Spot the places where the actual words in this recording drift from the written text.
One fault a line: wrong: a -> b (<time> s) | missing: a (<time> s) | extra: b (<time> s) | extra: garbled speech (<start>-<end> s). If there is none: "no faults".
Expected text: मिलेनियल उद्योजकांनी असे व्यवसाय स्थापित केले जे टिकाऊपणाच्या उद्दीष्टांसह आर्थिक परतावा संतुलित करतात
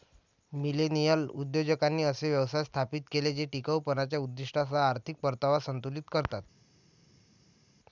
no faults